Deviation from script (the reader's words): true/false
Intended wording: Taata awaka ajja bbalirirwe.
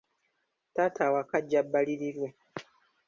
false